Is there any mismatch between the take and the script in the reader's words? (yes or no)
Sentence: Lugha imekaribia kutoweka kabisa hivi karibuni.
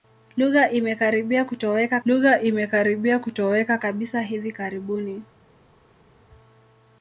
yes